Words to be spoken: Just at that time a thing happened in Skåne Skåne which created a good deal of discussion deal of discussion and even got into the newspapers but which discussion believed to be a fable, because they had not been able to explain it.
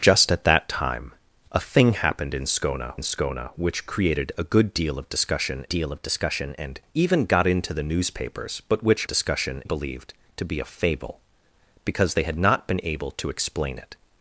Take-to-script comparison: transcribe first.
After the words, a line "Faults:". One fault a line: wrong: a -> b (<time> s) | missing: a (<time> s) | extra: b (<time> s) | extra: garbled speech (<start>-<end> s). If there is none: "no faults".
Just at that time a thing happened in Skåne Skåne which created a good deal of discussion deal of discussion and even got into the newspapers but which discussion believed to be a fable, because they had not been able to explain it.
Faults:
no faults